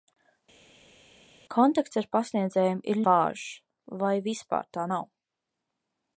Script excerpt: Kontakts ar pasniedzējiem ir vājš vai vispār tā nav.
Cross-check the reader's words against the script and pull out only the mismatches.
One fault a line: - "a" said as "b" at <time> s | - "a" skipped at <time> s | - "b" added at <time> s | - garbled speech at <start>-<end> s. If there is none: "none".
none